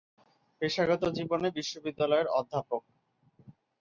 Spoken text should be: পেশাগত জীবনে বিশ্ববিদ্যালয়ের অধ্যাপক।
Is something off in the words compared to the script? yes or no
no